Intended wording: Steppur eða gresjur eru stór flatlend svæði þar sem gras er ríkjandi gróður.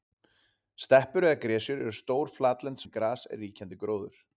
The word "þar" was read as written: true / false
false